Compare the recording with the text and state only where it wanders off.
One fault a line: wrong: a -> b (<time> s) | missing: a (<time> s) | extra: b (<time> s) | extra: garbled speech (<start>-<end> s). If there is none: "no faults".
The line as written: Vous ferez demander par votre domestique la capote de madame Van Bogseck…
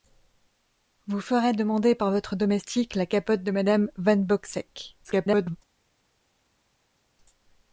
extra: garbled speech (5.0-5.6 s)